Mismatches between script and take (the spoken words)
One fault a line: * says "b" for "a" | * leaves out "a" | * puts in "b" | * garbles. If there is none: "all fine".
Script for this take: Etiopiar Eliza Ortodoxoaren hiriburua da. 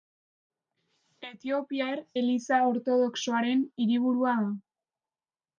all fine